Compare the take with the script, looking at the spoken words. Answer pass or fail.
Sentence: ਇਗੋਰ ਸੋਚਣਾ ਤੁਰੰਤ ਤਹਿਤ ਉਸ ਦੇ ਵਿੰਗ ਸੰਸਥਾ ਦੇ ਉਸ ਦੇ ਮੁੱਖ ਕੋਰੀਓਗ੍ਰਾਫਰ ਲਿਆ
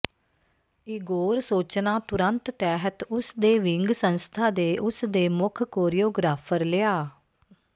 pass